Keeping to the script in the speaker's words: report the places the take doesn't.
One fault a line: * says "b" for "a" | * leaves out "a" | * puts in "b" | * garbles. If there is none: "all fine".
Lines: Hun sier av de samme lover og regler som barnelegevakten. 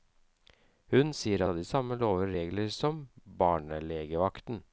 all fine